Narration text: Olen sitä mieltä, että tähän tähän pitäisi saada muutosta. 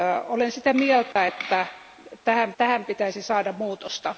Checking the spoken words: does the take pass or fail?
pass